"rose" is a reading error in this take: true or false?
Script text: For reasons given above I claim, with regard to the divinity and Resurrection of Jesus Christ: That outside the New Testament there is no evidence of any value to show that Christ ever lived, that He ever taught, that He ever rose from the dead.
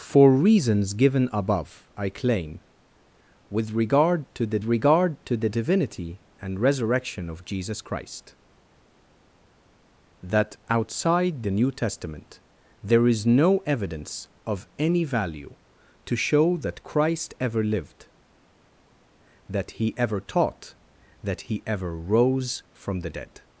false